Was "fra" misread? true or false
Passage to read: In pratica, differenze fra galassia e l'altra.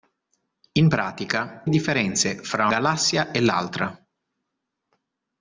false